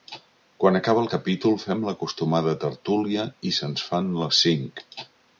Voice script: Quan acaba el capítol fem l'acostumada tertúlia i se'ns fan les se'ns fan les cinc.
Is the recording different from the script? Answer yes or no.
yes